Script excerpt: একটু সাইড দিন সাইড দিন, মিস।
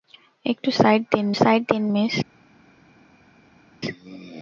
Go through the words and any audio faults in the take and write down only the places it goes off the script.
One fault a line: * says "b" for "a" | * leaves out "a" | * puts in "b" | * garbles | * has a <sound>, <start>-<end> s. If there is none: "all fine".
all fine